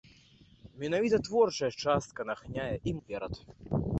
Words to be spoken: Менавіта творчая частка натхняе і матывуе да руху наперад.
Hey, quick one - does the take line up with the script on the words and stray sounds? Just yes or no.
no